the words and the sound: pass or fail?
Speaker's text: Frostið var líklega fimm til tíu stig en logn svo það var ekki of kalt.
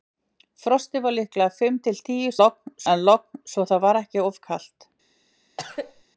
fail